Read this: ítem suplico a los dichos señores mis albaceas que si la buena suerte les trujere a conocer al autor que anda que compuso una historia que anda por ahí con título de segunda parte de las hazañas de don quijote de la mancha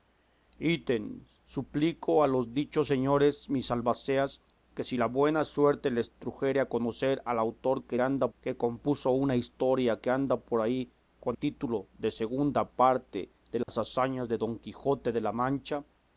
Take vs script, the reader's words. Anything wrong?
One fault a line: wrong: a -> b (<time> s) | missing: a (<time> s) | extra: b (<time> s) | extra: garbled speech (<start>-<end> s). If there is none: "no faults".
no faults